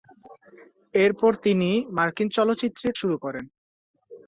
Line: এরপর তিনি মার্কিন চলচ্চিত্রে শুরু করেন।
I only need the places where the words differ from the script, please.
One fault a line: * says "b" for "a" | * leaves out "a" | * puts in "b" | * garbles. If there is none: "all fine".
all fine